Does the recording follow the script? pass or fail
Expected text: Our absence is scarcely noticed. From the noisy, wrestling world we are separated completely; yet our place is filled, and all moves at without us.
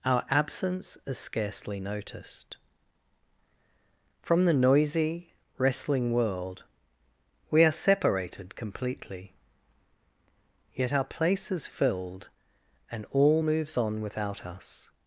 fail